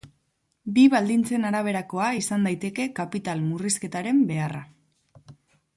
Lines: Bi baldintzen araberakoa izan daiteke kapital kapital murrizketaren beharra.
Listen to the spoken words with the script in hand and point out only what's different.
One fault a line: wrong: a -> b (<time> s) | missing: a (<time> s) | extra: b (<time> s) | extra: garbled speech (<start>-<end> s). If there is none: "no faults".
missing: kapital (3.4 s)